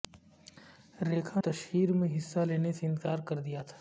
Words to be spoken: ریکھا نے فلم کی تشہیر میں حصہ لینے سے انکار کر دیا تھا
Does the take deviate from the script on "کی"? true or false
true